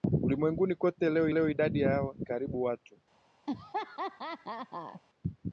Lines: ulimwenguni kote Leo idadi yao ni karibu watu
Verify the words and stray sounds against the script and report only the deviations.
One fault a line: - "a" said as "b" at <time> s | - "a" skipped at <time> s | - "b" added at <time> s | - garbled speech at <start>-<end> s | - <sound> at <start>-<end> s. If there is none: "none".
- "Leo" added at 1.3 s
- "ni" skipped at 2.2 s
- laugh at 3.5-5.0 s